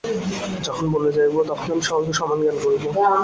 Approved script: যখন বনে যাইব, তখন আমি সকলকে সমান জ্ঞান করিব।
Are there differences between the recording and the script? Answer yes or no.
no